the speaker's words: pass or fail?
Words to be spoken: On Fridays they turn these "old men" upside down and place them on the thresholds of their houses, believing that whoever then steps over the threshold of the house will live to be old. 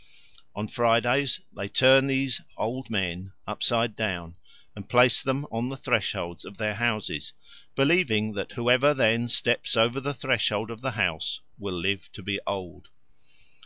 pass